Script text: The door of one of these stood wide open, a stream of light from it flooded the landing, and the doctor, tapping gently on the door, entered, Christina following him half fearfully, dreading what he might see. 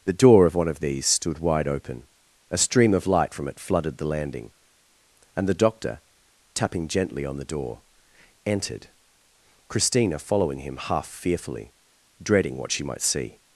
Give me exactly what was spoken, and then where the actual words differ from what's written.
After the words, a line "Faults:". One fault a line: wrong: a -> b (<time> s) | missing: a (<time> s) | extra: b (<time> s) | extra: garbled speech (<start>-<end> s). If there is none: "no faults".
The door of one of these stood wide open, a stream of light from it flooded the landing, and the doctor, tapping gently on the door, entered, Christina following him half fearfully, dreading what she might see.
Faults:
wrong: he -> she (12.7 s)